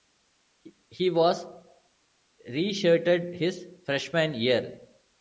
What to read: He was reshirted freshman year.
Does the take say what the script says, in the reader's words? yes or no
no